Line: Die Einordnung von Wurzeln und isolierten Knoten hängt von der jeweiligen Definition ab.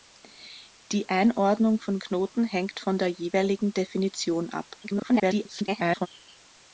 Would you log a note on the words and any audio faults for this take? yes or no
yes